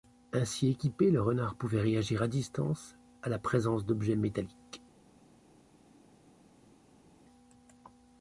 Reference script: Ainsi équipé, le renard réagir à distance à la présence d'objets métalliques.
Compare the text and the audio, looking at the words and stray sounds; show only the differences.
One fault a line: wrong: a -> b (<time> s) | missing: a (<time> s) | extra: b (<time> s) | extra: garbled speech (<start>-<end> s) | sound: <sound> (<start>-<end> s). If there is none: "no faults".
extra: pouvait (1.5 s)